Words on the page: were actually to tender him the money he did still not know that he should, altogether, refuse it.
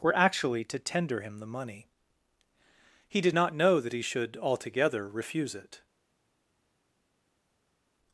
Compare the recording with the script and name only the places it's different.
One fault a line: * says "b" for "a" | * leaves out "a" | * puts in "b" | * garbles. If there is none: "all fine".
* leaves out "still"